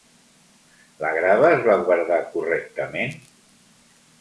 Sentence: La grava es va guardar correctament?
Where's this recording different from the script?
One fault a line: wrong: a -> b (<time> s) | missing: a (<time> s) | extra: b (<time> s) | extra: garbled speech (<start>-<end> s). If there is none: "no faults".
no faults